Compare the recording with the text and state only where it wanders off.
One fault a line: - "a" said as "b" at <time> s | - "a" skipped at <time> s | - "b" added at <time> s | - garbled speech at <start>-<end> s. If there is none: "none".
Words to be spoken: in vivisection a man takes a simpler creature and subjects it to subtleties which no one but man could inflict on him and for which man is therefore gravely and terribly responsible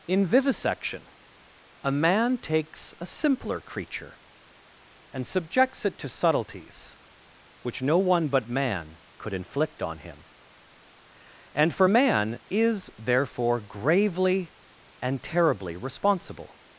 - "which" skipped at 11.9 s